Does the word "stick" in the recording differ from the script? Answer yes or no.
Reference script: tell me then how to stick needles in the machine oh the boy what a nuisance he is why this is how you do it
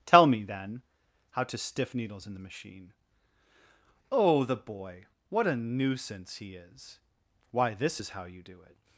yes